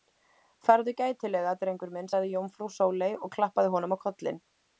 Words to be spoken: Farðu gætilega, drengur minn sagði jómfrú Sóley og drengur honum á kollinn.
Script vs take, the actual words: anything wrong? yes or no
yes